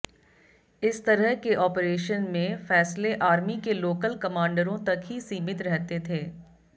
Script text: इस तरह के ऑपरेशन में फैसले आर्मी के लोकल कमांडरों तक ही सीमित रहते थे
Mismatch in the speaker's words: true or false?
false